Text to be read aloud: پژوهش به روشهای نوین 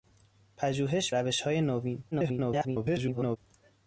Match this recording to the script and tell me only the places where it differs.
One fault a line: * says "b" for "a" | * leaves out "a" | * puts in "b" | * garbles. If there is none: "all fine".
* leaves out "به"
* garbles